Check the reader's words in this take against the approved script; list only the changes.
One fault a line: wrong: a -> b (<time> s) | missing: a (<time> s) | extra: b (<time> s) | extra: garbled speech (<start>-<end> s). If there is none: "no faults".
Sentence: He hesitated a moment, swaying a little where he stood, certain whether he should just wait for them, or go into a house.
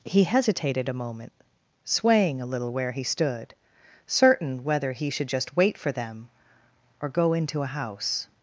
no faults